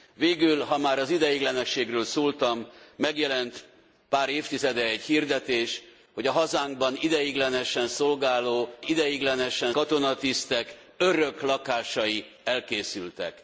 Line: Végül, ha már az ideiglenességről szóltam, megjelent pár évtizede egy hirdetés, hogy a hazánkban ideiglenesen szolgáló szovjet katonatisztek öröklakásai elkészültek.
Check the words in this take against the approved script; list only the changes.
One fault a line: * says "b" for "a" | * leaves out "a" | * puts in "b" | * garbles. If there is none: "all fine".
* says "ideiglenesen" for "szovjet"